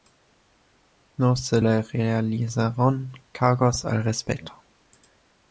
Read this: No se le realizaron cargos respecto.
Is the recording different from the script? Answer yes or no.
yes